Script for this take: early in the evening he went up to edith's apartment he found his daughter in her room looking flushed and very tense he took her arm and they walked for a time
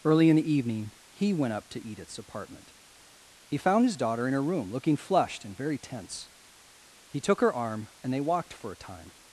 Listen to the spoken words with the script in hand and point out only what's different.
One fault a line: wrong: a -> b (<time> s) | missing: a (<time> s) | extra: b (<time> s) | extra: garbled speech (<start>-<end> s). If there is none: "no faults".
no faults